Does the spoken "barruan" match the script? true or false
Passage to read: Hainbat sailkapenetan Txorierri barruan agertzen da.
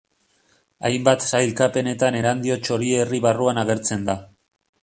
true